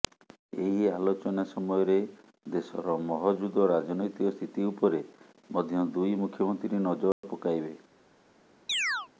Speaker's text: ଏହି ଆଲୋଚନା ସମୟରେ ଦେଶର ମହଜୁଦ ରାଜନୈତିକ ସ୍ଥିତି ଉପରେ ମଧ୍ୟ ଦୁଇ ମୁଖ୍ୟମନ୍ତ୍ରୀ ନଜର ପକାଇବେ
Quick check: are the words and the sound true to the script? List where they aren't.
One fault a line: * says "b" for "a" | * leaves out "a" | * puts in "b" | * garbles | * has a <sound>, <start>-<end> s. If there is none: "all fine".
* has a dropout, 7.1-7.2 s
* has a chirp, 8.7-9.1 s